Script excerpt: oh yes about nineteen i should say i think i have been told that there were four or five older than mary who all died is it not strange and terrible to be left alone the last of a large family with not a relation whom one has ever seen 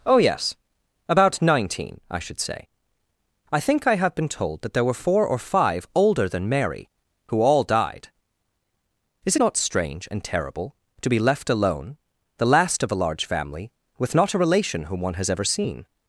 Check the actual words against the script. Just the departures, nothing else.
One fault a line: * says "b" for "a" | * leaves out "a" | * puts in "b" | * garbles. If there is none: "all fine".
* leaves out "it"